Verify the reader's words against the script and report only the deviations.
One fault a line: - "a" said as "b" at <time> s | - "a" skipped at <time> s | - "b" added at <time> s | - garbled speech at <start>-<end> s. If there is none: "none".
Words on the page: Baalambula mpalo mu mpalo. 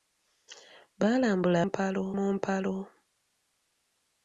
none